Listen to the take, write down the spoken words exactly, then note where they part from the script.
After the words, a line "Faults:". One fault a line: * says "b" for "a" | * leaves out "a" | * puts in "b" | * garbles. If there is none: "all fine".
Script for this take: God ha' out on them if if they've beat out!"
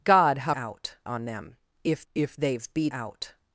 God ha' out on them if if they've beat out!"
Faults:
all fine